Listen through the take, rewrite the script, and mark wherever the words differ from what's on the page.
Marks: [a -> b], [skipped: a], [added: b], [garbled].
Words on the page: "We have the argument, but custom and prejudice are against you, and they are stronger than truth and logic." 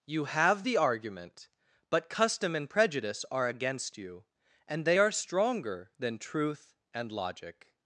["We -> You] have the argument, but custom and prejudice are against you, and they are stronger than truth and logic."